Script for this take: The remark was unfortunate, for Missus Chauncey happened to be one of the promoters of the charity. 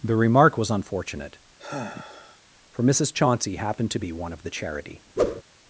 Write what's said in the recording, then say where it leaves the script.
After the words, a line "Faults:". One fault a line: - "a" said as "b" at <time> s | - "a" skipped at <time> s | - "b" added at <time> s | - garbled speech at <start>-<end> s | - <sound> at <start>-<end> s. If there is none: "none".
The remark was unfortunate, for Missus Chauncey happened to be one of the charity.
Faults:
- sigh at 1.6-2.4 s
- "promoters of the" skipped at 4.5 s
- whoosh at 5.2-5.4 s